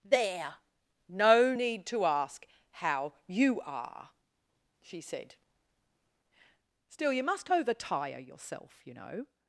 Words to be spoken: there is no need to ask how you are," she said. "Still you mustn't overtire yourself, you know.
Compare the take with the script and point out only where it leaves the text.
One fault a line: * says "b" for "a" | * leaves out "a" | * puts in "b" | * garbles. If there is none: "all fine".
* leaves out "is"
* says "must" for "mustn't"